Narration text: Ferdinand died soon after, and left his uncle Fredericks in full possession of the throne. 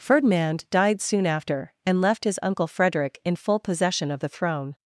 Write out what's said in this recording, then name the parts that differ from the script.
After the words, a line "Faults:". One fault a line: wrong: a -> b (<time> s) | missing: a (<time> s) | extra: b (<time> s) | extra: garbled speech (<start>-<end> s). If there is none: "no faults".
Ferdinand died soon after, and left his uncle Frederick in full possession of the throne.
Faults:
wrong: Fredericks -> Frederick (2.6 s)